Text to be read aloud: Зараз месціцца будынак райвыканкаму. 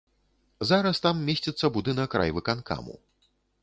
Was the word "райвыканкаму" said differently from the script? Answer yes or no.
no